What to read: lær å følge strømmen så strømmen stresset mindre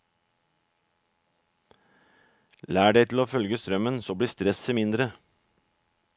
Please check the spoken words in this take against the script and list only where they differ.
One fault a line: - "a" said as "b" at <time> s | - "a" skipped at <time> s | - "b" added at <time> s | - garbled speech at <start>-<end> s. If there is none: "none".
- "deg til" added at 2.9 s
- "strømmen" said as "blir" at 4.1 s